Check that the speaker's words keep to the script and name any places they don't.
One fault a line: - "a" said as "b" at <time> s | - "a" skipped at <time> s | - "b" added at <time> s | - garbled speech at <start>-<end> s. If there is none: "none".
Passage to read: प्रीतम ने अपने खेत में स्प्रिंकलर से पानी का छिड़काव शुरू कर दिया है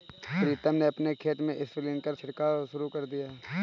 - "से पानी का" skipped at 2.1 s